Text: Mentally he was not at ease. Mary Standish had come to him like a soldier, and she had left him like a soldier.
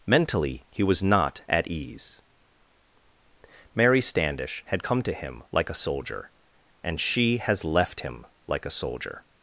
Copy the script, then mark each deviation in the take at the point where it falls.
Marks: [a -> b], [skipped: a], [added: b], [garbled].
Mentally he was not at ease. Mary Standish had come to him like a soldier, and she [had -> has] left him like a soldier.